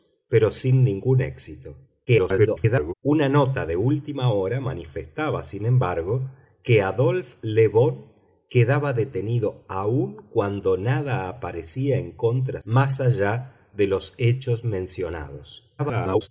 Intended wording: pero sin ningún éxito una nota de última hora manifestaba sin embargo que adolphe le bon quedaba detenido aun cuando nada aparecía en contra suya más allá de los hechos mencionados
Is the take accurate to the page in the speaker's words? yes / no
no